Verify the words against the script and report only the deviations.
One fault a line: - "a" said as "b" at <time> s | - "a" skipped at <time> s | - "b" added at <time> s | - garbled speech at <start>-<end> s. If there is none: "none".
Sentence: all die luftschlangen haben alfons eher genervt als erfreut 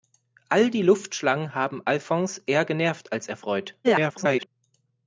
- garbled speech at 3.8-4.5 s